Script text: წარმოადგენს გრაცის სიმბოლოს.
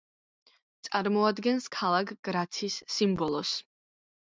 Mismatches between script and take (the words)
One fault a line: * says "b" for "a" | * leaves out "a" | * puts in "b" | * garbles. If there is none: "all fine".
* puts in "ქალაქ"